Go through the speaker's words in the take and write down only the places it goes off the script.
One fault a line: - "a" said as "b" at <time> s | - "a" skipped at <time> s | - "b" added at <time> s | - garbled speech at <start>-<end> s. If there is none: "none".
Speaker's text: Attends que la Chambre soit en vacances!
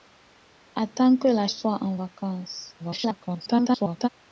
- "Chambre" skipped at 1.5 s
- garbled speech at 2.8-4.1 s